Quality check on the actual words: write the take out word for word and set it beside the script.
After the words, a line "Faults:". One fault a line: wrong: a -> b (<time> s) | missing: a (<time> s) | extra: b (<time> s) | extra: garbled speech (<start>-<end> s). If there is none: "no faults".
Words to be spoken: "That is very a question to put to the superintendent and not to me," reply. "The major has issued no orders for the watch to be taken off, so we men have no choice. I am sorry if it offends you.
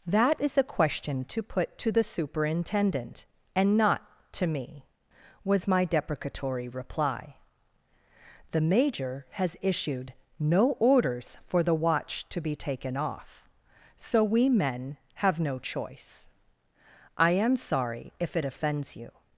"That is a question to put to the superintendent and not to me," was my deprecatory reply. "The major has issued no orders for the watch to be taken off, so we men have no choice. I am sorry if it offends you.
Faults:
missing: very (0.6 s)
extra: was my deprecatory (5.4 s)